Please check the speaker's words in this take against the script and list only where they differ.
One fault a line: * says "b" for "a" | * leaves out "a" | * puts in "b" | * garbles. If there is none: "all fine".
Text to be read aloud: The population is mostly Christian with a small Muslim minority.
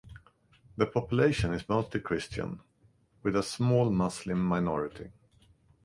all fine